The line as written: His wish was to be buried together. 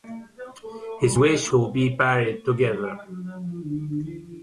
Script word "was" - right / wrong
wrong